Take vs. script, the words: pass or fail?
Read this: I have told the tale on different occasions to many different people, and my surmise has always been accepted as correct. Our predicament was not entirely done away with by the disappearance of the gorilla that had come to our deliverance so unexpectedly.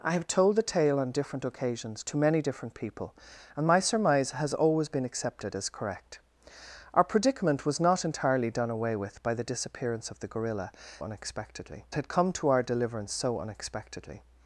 fail